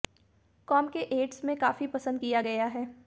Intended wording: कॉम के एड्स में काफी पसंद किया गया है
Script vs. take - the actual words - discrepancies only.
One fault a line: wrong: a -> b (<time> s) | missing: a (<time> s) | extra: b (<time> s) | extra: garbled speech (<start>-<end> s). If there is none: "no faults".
no faults